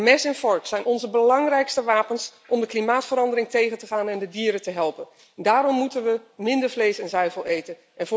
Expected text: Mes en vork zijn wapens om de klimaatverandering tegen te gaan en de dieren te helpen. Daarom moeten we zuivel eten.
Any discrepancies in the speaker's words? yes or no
yes